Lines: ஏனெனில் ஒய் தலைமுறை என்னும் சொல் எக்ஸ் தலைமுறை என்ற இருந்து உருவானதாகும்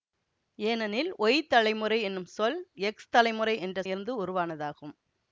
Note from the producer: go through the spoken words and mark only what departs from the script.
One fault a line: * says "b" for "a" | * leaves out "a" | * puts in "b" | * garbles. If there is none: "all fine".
all fine